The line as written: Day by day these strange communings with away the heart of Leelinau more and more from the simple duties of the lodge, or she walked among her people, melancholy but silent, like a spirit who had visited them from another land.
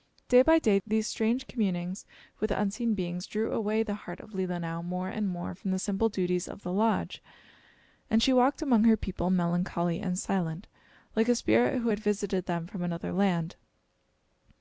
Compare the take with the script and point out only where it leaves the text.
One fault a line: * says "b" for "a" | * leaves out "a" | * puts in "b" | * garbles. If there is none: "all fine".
* puts in "unseen beings drew"
* says "and" for "or"
* says "and" for "but"